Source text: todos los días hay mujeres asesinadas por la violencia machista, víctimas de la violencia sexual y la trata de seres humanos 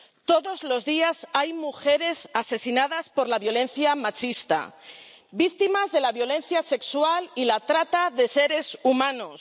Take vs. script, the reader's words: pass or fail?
pass